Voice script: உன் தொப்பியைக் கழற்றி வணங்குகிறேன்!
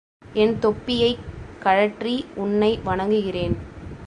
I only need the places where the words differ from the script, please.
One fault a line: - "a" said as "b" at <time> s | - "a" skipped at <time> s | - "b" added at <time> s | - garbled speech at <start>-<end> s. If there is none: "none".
- "உன்" said as "என்" at 0.3 s
- "உன்னை" added at 2.4 s